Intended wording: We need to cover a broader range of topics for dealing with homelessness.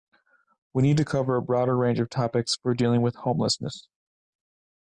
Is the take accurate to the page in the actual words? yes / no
yes